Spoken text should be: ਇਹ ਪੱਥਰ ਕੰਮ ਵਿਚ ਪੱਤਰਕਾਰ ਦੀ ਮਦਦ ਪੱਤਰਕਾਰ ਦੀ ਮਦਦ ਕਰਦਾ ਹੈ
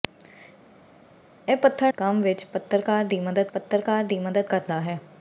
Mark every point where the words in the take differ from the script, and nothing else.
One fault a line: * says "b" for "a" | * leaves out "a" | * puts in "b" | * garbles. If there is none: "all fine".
all fine